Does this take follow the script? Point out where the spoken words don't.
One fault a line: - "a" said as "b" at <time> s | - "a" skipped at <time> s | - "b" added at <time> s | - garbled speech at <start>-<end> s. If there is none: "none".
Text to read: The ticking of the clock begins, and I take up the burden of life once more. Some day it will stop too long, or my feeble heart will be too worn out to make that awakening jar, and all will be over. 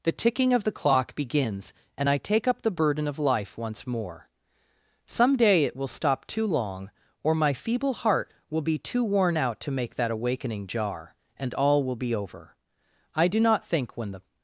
- "I do not think when the" added at 13.1 s